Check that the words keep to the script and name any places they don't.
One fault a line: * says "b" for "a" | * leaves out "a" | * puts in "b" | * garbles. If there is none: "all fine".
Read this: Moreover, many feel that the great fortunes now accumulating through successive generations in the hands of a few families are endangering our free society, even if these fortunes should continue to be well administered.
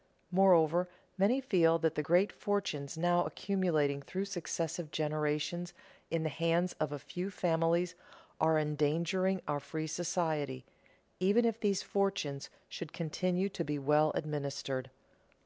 all fine